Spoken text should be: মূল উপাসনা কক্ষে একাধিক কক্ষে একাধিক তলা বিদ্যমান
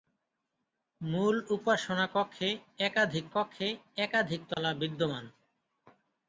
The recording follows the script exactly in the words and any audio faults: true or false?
false